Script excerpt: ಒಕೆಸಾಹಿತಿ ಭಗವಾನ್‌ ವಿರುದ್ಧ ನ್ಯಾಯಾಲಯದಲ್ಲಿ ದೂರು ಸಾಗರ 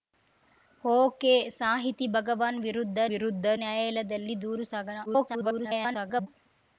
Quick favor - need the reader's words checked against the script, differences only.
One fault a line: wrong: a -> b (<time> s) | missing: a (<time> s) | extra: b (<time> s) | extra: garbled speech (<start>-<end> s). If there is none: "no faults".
extra: ವಿರುದ್ಧ (3.1 s)
extra: garbled speech (5.1-6.3 s)